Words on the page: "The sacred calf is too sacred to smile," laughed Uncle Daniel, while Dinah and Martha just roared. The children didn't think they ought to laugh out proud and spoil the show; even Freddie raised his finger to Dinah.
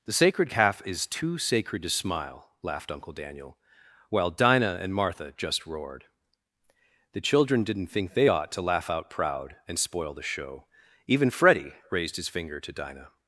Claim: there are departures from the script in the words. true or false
false